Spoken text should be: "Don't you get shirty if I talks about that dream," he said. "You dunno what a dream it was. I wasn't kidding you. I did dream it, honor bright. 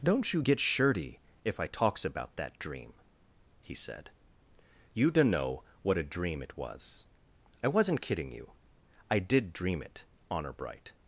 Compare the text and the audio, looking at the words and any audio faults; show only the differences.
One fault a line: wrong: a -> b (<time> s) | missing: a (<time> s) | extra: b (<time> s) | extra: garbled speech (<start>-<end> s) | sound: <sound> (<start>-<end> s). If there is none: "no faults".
no faults